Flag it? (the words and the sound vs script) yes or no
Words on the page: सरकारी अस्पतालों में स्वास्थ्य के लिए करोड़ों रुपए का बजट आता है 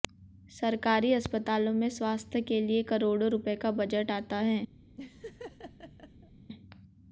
yes